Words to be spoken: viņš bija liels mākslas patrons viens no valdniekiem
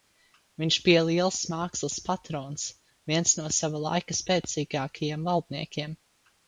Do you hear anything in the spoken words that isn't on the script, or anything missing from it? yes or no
yes